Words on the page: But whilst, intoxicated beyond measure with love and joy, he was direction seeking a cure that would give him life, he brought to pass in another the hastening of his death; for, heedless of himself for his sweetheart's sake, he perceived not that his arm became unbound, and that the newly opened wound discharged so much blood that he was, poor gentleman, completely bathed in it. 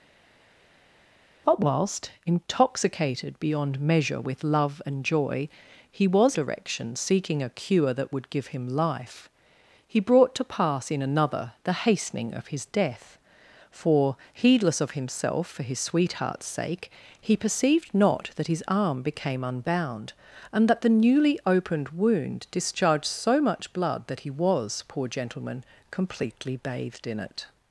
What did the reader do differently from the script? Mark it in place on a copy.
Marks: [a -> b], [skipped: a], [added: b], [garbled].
But whilst, intoxicated beyond measure with love and joy, he was direction seeking a cure that would give him life, he brought to pass in another the hastening of his death; for, heedless of himself for his sweetheart's sake, he perceived not that his arm became unbound, and that the newly opened wound discharged so much blood that he was, poor gentleman, completely bathed in it.